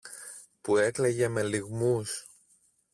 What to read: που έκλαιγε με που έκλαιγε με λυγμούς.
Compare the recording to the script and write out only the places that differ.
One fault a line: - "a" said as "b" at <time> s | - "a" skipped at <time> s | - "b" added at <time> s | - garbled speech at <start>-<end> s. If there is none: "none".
- "που έκλαιγε με" skipped at 1.4 s